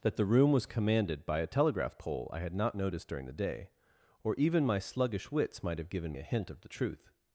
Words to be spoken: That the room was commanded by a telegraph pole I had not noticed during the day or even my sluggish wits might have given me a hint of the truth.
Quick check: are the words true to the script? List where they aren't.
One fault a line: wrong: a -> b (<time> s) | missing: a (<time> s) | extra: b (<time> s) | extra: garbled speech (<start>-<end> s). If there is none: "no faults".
missing: me (6.1 s)